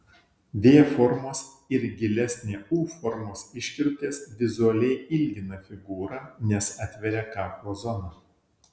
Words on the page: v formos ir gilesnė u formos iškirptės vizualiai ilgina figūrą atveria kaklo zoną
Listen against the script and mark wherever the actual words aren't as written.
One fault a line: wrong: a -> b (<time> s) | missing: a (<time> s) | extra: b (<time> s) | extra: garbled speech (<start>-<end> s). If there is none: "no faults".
extra: nes (6.5 s)